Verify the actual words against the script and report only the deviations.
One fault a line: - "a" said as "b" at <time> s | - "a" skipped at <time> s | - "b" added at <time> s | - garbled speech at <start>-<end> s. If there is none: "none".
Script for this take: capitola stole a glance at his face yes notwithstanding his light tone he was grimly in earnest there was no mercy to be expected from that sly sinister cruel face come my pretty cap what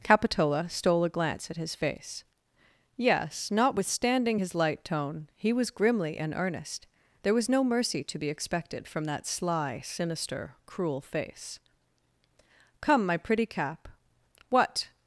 none